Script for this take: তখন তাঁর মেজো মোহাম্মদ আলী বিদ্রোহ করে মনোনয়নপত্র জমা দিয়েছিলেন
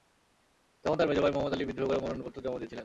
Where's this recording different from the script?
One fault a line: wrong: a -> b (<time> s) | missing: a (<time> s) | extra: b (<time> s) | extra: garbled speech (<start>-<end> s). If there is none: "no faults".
extra: ভাই (1.2 s)